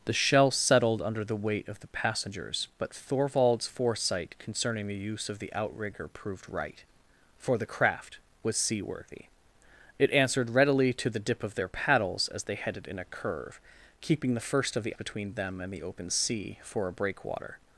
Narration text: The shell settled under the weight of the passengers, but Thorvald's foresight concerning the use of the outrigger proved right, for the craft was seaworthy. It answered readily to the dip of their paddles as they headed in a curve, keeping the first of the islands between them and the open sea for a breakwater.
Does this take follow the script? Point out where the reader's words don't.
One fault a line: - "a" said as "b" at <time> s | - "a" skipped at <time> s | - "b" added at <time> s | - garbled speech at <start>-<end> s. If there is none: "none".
- "islands" skipped at 14.9 s